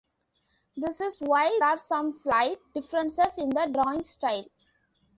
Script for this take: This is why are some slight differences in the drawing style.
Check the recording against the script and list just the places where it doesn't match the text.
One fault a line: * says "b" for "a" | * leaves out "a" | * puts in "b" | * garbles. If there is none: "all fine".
all fine